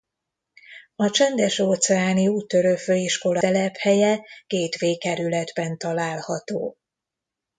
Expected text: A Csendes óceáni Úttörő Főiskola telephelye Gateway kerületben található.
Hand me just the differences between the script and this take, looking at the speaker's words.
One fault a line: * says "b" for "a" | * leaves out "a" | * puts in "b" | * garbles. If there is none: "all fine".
all fine